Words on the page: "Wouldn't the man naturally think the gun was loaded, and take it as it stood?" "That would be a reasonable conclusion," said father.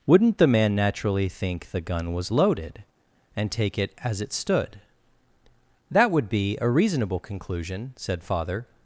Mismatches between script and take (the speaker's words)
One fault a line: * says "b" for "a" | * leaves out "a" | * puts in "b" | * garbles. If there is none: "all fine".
all fine